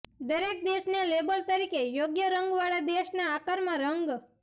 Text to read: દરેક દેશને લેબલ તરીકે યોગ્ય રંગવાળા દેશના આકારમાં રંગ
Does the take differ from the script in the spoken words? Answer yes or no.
no